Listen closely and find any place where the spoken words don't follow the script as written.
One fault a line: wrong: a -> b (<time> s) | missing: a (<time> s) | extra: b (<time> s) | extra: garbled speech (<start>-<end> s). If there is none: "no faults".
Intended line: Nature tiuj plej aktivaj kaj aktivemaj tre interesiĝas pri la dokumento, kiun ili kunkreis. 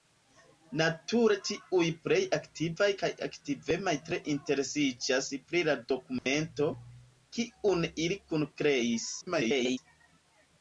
extra: garbled speech (9.2-9.8 s)